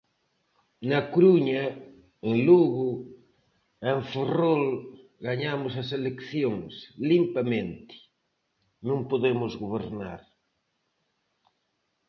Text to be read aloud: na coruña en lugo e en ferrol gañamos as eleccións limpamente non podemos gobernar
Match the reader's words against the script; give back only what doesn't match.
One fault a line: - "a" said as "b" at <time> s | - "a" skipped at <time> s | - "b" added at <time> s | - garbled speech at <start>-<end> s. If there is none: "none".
none